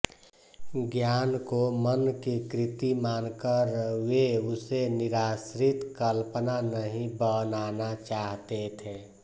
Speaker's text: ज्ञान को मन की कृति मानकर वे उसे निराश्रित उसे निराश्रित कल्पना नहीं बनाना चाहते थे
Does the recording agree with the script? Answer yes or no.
no